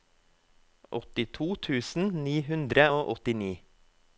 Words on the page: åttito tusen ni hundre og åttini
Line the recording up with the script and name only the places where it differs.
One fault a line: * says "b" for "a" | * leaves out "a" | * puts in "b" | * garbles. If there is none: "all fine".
all fine